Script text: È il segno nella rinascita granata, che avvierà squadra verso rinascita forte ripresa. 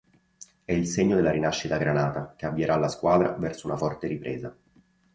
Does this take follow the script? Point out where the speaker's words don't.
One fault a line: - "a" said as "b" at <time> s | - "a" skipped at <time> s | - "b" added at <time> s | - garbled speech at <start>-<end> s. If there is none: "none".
- "nella" said as "della" at 1.1 s
- "la" added at 2.8 s
- "rinascita" said as "una" at 3.7 s